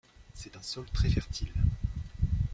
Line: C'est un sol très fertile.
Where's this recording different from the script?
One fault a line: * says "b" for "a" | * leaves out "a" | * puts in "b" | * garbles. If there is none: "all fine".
all fine